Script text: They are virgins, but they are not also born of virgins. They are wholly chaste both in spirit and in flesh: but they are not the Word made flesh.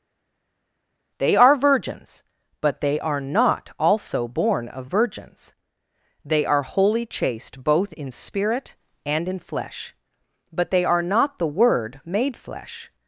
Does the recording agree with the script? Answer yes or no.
yes